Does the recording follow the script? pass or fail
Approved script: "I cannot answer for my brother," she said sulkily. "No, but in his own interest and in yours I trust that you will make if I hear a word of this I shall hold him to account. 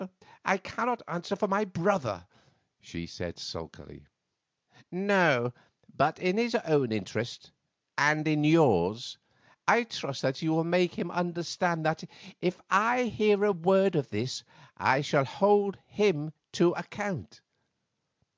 fail